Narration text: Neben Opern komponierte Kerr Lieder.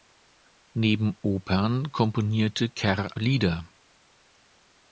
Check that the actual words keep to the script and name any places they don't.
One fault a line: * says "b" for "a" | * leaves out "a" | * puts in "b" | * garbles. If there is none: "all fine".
all fine